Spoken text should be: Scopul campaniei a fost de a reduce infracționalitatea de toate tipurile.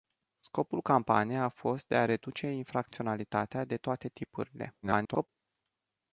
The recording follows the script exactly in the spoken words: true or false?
false